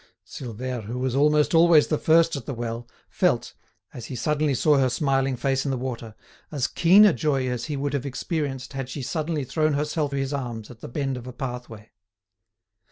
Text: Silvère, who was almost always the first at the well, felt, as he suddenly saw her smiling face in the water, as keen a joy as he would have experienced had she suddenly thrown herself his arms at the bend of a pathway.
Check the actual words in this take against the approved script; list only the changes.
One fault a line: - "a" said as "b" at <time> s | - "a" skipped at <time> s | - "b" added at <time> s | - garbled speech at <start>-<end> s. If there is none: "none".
none